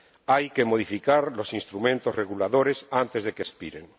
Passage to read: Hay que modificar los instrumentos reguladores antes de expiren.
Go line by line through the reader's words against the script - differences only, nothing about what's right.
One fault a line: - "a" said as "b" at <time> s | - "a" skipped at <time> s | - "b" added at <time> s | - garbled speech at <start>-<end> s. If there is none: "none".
- "que" added at 3.3 s